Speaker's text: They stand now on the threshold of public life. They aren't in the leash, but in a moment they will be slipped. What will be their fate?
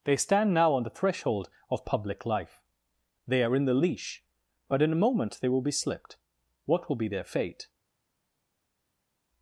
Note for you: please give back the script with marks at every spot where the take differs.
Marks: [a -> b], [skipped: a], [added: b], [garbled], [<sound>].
They stand now on the threshold of public life. They [aren't -> are] in the leash, but in a moment they will be slipped. What will be their fate?